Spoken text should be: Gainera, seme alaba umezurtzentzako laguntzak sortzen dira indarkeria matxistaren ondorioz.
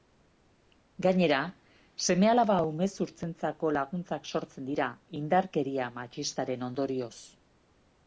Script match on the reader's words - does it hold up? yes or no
yes